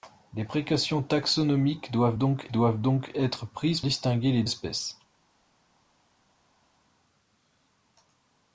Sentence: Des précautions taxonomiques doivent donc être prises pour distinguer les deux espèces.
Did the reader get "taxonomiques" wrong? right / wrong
right